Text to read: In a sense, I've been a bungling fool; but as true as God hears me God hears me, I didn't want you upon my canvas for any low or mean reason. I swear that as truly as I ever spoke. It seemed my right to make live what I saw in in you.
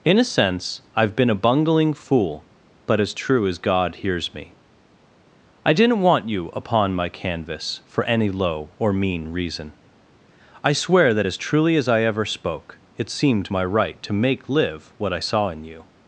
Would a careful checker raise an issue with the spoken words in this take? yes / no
yes